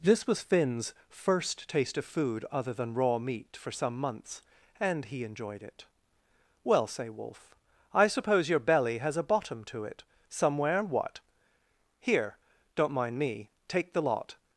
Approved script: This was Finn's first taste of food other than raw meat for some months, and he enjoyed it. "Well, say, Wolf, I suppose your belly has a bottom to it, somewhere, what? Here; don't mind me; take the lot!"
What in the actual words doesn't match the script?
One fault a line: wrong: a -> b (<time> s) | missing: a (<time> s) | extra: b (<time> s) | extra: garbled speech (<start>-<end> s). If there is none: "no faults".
no faults